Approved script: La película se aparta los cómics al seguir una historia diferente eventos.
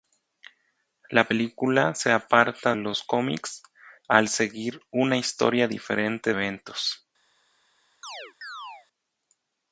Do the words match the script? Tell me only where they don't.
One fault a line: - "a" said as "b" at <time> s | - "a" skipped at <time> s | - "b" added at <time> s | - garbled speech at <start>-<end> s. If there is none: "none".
none